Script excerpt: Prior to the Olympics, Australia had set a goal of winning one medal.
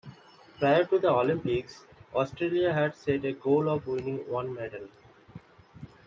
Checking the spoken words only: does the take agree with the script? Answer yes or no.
yes